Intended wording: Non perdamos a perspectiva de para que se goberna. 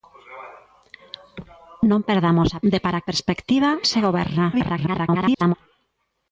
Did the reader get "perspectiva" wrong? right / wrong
wrong